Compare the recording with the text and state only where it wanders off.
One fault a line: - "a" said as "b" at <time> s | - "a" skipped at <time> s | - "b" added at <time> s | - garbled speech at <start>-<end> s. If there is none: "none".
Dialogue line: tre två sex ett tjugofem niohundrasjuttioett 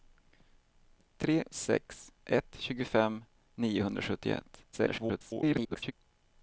- "två" skipped at 1.4 s
- garbled speech at 4.7-5.9 s